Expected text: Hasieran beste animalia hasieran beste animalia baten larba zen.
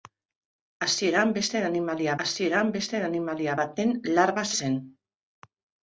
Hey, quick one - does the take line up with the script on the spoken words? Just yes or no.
yes